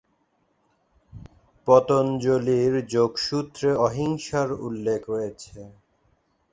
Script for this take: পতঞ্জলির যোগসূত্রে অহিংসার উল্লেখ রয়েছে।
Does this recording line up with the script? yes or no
yes